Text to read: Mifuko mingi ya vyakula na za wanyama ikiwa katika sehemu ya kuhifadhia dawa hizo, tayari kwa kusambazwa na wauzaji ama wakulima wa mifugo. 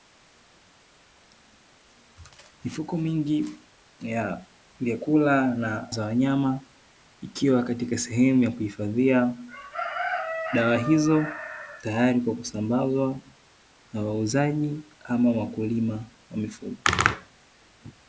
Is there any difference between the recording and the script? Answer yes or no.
no